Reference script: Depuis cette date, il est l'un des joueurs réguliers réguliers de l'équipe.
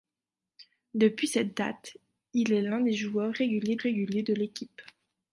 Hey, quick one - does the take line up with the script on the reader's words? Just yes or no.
yes